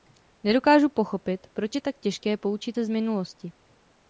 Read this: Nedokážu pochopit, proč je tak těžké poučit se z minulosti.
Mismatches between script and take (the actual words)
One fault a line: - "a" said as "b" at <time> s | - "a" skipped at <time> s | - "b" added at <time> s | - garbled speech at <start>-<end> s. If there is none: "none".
none